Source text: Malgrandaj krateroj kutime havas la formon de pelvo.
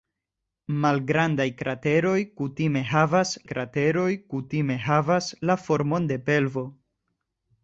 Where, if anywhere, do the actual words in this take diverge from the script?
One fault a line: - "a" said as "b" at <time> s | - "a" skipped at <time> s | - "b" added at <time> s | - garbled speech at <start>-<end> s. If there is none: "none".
- "krateroj kutime havas" added at 3.5 s